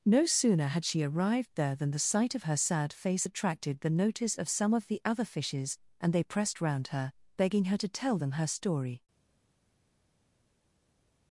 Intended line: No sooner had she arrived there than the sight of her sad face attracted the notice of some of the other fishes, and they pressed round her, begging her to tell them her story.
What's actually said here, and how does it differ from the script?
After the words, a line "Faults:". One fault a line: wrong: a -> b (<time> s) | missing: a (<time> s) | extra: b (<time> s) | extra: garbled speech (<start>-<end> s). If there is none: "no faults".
No sooner had she arrived there than the sight of her sad face attracted the notice of some of the other fishes, and they pressed round her, begging her to tell them her story.
Faults:
no faults